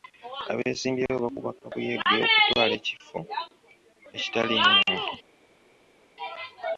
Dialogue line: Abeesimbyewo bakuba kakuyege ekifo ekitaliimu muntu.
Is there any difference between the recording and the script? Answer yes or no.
yes